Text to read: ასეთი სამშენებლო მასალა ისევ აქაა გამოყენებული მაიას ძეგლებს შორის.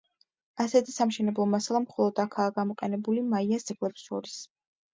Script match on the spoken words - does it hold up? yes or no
no